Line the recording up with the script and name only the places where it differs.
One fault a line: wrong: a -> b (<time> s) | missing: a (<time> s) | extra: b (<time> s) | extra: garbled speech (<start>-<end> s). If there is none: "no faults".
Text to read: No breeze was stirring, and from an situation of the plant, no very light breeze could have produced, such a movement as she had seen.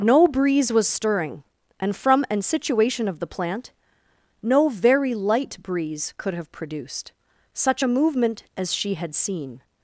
no faults